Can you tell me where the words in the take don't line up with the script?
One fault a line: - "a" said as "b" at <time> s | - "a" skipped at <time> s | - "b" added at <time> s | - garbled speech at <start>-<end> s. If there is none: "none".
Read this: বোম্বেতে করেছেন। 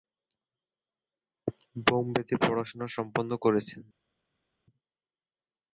- "পড়াশোনা সম্পন্ন" added at 2.4 s